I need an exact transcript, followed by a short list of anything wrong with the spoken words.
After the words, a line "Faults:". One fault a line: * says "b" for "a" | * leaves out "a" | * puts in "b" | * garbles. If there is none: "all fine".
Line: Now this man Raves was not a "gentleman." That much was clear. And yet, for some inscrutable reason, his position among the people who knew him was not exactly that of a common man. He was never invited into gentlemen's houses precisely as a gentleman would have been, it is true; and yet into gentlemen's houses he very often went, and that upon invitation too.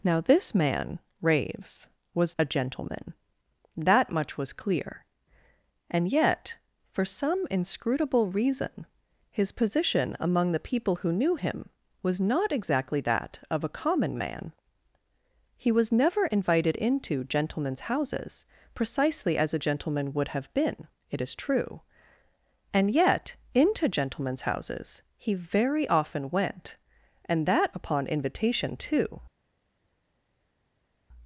Now this man Raves was a "gentleman." That much was clear. And yet, for some inscrutable reason, his position among the people who knew him was not exactly that of a common man. He was never invited into gentlemen's houses precisely as a gentleman would have been, it is true; and yet into gentlemen's houses he very often went, and that upon invitation too.
Faults:
* leaves out "not"